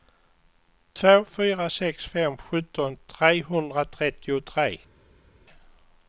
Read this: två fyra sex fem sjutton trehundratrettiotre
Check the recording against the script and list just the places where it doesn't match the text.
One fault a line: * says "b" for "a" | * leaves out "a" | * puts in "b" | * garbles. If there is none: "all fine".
all fine